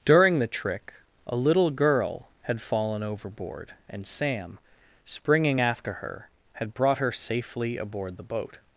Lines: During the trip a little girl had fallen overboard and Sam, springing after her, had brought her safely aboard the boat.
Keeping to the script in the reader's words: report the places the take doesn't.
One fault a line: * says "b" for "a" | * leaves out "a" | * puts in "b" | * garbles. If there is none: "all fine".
* says "trick" for "trip"